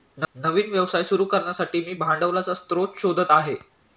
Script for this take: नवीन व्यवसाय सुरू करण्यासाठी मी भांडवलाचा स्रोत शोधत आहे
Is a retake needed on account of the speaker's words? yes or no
no